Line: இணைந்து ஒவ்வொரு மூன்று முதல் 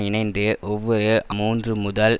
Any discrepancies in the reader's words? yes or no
no